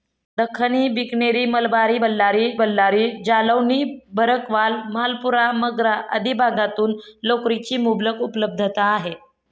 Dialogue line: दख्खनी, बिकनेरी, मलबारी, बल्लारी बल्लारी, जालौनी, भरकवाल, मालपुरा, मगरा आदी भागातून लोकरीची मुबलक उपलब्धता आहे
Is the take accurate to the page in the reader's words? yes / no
yes